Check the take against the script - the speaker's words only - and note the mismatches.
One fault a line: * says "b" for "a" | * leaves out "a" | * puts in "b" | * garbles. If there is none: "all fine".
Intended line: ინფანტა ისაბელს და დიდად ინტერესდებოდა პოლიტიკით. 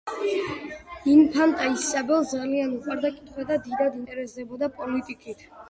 * puts in "ძალიან უყვარდა კითხვა"